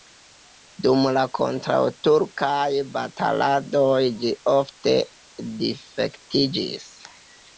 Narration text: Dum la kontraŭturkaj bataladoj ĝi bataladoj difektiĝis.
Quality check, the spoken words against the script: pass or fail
fail